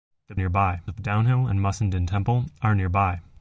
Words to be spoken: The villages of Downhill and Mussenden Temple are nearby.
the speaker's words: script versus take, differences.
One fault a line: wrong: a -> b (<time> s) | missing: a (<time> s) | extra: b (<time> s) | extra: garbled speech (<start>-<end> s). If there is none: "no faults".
wrong: villages -> nearby (0.3 s)